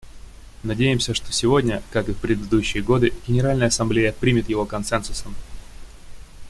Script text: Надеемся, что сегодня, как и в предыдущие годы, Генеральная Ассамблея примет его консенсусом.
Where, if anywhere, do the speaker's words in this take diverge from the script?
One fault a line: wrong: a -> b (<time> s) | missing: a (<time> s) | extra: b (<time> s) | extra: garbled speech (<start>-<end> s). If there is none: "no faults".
no faults